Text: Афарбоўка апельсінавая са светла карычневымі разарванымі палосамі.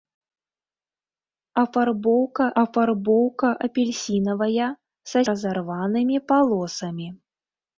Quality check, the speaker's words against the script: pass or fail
fail